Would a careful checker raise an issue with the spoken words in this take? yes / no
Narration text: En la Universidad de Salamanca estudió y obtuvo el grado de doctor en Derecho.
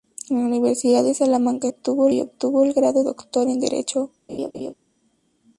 yes